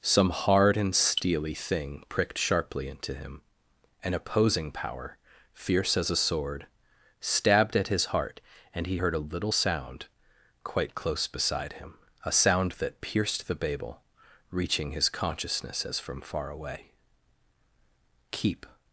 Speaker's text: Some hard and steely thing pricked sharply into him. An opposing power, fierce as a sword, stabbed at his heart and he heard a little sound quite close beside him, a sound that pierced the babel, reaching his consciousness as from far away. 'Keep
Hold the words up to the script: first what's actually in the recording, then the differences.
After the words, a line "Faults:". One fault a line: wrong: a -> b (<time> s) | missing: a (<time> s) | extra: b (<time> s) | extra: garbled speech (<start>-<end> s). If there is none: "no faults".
Some hard and steely thing pricked sharply into him. An opposing power, fierce as a sword, stabbed at his heart and he heard a little sound quite close beside him, a sound that pierced the babel, reaching his consciousness as from far away. 'Keep
Faults:
no faults